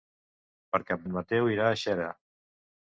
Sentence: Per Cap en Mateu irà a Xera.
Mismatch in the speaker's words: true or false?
false